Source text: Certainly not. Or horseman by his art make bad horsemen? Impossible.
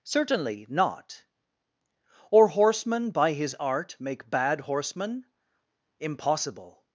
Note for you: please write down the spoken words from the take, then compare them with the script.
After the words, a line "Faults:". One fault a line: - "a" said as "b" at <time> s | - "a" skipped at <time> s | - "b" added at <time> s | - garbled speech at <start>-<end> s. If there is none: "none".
Certainly not. Or horseman by his art make bad horsemen? Impossible.
Faults:
none